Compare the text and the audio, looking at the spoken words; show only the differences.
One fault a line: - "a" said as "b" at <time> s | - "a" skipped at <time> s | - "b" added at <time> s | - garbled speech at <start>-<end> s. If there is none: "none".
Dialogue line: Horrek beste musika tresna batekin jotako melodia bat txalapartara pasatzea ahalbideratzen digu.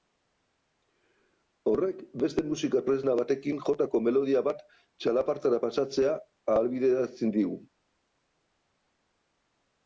none